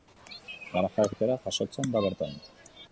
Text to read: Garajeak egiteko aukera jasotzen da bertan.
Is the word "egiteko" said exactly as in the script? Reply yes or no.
no